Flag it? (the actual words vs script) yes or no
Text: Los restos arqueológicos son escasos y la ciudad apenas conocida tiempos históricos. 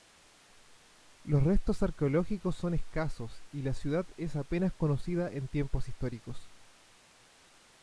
yes